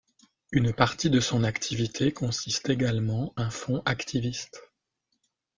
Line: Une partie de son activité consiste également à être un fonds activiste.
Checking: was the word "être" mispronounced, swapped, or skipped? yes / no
yes